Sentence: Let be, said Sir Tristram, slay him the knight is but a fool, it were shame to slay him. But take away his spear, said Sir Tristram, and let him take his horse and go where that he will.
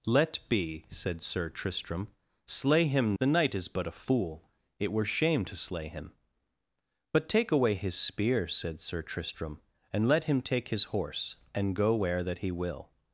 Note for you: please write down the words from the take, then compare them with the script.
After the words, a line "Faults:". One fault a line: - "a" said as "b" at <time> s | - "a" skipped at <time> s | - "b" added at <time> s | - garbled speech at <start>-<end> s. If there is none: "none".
Let be, said Sir Tristram, slay him the knight is but a fool, it were shame to slay him. But take away his spear, said Sir Tristram, and let him take his horse and go where that he will.
Faults:
none